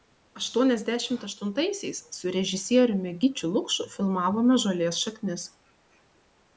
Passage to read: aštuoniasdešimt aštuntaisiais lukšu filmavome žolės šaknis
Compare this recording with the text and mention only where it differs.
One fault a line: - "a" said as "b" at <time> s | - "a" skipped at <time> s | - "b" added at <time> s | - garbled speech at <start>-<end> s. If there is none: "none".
- "su režisieriumi gyčiu" added at 2.2 s